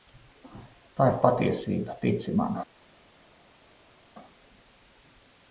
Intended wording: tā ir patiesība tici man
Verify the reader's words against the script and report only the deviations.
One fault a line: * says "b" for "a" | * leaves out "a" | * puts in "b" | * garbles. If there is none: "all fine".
all fine